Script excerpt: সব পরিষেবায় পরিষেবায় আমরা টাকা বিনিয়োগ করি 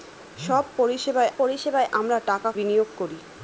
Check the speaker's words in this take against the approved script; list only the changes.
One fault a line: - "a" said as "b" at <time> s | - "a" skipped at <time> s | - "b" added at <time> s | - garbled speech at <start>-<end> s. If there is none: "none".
none